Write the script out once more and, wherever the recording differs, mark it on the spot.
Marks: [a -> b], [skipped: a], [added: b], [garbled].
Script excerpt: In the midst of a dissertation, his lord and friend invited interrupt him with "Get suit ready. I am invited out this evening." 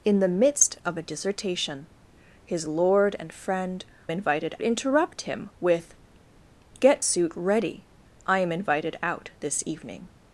In the midst of a dissertation, his lord and friend invited interrupt him with "Get suit ready. I am invited out this evening."